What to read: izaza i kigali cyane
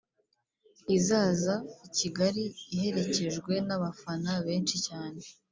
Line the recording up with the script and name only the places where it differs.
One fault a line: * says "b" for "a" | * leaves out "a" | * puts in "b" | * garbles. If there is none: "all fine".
* puts in "iherekejwe n'abafana benshi"